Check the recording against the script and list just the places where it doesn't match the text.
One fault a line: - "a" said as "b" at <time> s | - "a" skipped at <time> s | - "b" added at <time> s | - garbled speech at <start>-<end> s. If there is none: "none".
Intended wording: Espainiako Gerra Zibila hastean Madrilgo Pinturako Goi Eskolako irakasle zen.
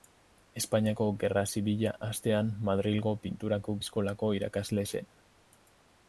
- "Goi" skipped at 3.8 s